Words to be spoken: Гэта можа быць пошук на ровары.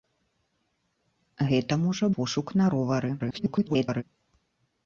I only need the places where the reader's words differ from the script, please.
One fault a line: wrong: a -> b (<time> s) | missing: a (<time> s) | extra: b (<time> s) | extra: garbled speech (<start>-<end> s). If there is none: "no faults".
missing: быць (2.0 s)
extra: garbled speech (3.2-4.0 s)